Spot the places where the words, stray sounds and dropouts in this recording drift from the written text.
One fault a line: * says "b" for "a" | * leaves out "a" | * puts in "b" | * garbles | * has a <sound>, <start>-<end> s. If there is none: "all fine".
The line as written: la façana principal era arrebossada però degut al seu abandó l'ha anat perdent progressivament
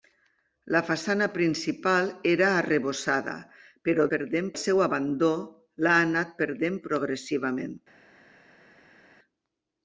* says "perdent" for "degut"